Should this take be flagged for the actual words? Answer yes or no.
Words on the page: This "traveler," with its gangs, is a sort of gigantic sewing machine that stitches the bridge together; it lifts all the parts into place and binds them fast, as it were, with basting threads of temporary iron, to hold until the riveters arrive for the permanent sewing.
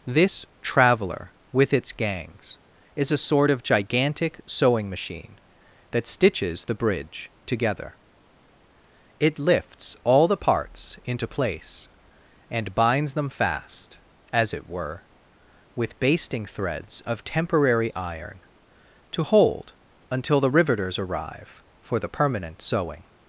no